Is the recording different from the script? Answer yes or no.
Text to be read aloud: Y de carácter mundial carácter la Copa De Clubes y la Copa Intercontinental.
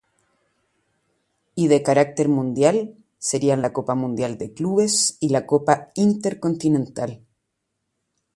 yes